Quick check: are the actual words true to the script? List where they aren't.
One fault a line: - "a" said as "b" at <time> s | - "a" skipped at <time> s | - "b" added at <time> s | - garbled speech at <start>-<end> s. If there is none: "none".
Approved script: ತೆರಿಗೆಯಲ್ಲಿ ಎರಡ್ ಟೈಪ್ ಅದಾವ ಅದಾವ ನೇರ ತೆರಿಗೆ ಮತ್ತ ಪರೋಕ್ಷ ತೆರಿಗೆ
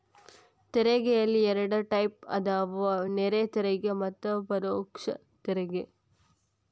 - "ಅದಾವ" skipped at 2.9 s